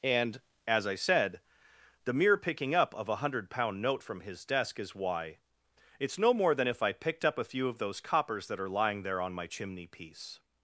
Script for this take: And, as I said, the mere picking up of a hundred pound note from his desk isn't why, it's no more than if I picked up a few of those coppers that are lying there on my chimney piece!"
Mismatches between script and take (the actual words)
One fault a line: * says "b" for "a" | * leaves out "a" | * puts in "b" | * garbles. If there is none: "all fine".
* says "is" for "isn't"